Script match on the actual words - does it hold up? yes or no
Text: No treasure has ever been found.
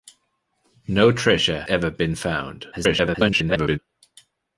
no